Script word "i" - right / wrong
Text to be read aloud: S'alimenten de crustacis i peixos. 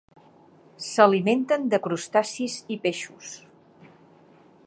right